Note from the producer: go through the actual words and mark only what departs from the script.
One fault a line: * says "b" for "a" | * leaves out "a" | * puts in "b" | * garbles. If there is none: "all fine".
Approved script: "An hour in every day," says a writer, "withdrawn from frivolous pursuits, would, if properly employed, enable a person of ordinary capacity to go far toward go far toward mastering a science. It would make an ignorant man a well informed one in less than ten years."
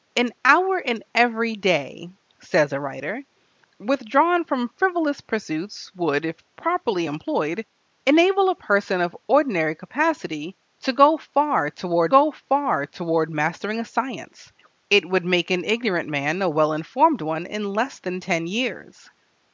all fine